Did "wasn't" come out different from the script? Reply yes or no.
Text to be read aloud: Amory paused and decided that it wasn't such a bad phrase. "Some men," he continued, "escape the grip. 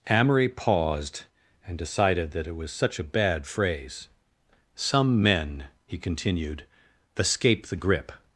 yes